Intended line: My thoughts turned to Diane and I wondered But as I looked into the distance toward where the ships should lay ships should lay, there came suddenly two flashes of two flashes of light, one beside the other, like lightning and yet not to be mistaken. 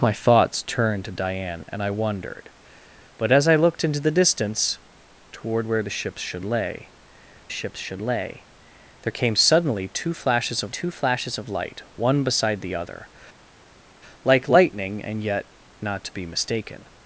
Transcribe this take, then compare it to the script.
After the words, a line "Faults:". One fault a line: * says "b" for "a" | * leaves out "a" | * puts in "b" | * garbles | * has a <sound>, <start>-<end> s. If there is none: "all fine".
My thoughts turned to Diane and I wondered But as I looked into the distance toward where the ships should lay ships should lay, there came suddenly two flashes of two flashes of light, one beside the other, like lightning and yet not to be mistaken.
Faults:
all fine